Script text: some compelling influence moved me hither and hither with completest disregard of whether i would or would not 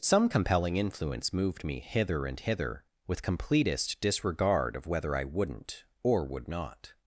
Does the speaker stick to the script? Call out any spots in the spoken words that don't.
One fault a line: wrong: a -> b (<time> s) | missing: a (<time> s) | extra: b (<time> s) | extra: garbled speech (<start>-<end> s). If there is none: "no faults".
wrong: would -> wouldn't (5.2 s)